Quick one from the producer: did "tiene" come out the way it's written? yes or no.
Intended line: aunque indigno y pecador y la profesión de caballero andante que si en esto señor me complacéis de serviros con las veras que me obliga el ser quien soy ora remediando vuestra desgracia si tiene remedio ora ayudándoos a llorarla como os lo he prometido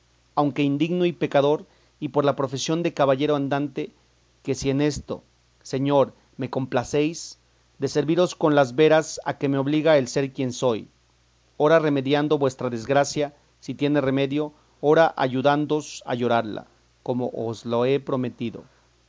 yes